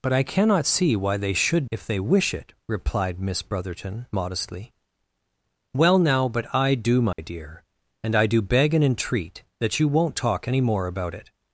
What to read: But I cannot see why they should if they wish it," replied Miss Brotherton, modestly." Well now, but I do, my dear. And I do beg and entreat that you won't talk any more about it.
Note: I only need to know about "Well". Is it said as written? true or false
true